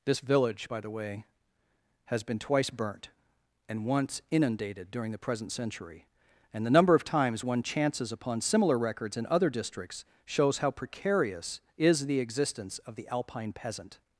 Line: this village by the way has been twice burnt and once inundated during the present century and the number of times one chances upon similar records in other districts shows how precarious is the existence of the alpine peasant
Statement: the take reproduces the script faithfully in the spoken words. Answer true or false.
true